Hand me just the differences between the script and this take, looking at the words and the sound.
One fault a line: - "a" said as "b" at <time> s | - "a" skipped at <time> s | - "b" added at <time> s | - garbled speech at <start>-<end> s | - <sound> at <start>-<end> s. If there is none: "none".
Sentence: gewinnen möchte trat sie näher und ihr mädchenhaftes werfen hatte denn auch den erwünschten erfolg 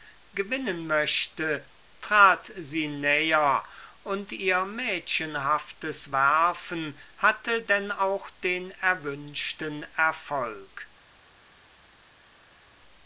none